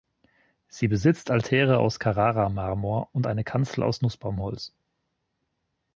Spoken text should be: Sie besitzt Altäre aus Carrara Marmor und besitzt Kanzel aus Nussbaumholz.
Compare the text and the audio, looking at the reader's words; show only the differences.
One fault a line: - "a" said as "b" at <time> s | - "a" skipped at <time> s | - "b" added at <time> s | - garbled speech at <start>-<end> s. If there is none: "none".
- "besitzt" said as "eine" at 3.3 s